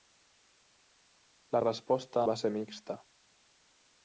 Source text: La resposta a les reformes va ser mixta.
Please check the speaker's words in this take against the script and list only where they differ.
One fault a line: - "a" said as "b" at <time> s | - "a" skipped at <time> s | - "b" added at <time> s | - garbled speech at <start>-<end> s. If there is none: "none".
- "a les reformes" skipped at 2.2 s